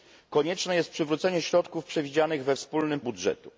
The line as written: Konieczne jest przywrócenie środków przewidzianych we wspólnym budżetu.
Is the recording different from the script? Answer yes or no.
no